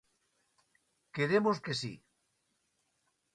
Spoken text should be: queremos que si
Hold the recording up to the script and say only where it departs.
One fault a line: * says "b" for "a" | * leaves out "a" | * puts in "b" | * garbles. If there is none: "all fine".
all fine